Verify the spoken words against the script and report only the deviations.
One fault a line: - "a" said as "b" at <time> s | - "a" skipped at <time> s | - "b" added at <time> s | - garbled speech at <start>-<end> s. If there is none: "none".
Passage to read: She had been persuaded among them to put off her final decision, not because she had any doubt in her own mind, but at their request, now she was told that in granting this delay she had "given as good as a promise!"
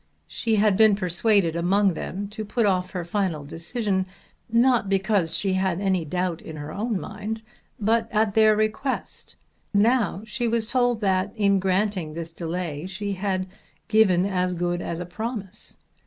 none